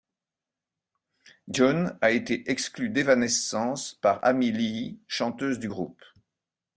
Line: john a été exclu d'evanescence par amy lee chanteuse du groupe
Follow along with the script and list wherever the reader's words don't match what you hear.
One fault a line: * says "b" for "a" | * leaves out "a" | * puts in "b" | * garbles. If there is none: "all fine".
all fine